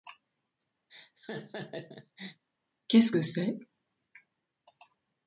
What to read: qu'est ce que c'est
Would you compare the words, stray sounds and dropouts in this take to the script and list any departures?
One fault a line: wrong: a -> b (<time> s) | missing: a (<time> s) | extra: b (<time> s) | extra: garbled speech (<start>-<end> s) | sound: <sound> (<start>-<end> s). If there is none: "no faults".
sound: laugh (0.9-2.4 s)